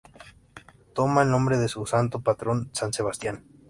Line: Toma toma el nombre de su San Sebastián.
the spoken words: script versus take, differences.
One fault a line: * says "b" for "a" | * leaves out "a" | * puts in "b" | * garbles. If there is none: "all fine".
* leaves out "toma"
* puts in "santo patrón"